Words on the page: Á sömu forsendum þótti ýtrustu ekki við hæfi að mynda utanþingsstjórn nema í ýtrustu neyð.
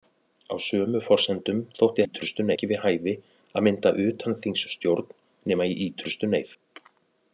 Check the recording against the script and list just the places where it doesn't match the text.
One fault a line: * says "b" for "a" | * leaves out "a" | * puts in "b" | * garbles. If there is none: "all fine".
all fine